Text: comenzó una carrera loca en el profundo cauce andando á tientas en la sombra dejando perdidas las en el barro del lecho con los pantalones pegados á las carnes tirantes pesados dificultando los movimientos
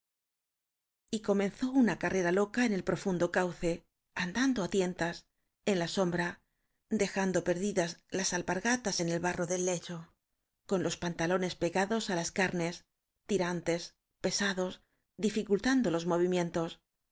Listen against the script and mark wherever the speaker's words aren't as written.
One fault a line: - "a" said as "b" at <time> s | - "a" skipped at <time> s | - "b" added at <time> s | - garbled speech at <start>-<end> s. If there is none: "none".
- "alpargatas" added at 8.3 s